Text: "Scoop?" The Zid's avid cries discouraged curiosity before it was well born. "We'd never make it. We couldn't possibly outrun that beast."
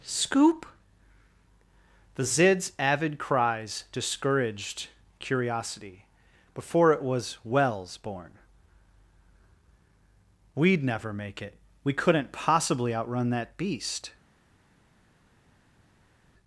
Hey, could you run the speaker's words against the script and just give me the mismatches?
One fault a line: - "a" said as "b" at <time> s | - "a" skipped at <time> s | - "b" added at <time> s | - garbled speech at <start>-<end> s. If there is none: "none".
- "well" said as "wells" at 7.4 s